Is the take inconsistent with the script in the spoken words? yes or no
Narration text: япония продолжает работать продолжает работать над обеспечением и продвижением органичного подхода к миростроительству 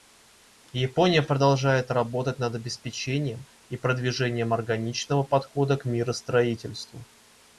yes